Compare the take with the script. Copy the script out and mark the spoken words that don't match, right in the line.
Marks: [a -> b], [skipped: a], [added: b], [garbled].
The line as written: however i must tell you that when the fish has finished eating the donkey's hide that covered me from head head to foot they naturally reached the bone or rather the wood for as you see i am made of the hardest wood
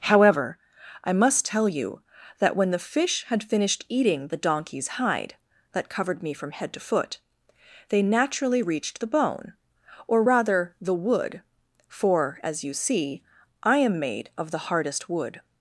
however i must tell you that when the fish [has -> had] finished eating the donkey's hide that covered me from head [skipped: head] to foot they naturally reached the bone or rather the wood for as you see i am made of the hardest wood